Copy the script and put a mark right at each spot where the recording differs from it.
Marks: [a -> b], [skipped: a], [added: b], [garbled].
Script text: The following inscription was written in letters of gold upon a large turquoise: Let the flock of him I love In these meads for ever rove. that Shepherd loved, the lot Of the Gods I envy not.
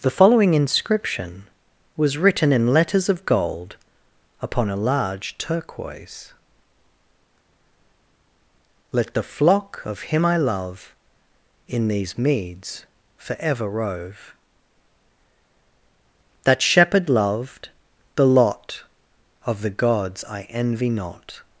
The following inscription was written in letters of gold upon a large turquoise: Let the flock of him I love In these meads for ever rove. that Shepherd loved, the lot Of the Gods I envy not.